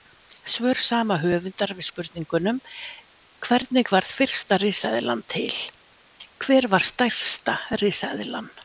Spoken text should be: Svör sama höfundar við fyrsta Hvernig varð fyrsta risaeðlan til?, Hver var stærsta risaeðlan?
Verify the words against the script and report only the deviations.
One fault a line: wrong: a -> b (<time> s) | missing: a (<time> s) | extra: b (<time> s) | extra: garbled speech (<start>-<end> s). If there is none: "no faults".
wrong: fyrsta -> spurningunum (1.9 s)